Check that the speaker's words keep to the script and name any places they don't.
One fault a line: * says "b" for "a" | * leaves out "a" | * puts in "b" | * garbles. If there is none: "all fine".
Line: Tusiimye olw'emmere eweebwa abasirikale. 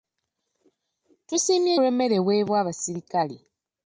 all fine